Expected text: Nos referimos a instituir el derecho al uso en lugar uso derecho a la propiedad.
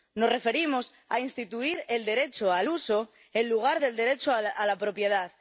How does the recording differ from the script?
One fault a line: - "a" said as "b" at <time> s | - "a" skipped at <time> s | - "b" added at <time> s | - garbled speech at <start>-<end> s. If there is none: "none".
- "uso" said as "del" at 3.8 s